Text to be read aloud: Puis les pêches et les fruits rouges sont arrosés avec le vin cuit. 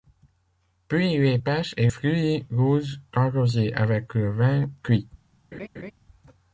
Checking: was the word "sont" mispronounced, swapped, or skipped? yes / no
yes